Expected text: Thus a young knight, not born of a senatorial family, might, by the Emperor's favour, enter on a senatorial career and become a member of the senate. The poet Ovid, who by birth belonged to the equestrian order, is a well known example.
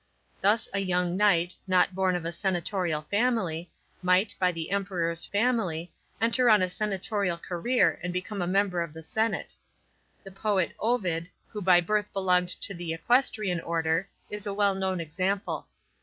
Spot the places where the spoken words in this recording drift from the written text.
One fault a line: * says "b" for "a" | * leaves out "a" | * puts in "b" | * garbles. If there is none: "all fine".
* says "family" for "favour"